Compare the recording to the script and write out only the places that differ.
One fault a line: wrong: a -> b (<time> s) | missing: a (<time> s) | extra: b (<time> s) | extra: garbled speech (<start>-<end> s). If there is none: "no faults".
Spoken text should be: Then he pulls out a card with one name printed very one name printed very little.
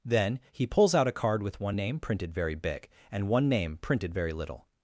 extra: big and (2.5 s)